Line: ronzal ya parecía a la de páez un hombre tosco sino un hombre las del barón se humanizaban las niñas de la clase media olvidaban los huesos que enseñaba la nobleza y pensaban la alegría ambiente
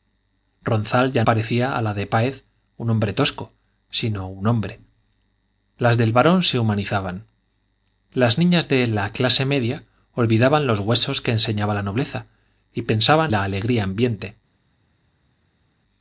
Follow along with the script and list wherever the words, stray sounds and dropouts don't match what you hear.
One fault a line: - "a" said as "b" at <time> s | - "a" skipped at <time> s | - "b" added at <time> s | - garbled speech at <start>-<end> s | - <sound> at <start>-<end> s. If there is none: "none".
none